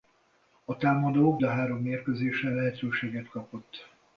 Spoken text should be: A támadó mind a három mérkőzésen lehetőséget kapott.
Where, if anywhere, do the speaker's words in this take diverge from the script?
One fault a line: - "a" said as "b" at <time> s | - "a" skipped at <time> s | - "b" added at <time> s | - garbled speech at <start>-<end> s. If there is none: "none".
- "mind" skipped at 1.4 s